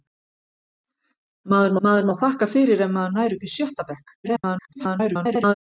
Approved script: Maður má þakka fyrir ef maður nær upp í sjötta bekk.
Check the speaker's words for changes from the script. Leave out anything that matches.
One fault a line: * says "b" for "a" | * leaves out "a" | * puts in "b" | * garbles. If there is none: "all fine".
* puts in "maður"
* garbles